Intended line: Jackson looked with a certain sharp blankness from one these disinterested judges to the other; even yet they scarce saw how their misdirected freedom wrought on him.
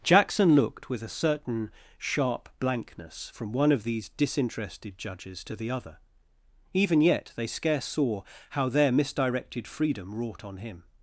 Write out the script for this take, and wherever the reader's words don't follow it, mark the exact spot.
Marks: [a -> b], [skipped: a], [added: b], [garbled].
Jackson looked with a certain sharp blankness from one [added: of] these disinterested judges to the other; even yet they scarce saw how their misdirected freedom wrought on him.